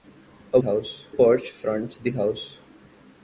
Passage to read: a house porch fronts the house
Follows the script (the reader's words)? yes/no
yes